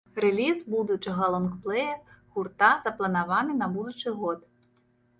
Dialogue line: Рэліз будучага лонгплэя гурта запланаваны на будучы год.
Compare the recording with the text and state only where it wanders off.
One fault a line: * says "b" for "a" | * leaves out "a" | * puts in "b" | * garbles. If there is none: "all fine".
all fine